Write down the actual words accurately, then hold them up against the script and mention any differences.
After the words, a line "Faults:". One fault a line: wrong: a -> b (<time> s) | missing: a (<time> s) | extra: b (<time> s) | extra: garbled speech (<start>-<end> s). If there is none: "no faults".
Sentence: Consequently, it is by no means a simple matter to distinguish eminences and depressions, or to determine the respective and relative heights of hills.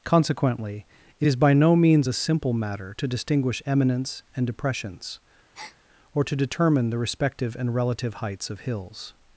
Consequently, it is by no means a simple matter to distinguish eminence and depressions, or to determine the respective and relative heights of hills.
Faults:
wrong: eminences -> eminence (3.6 s)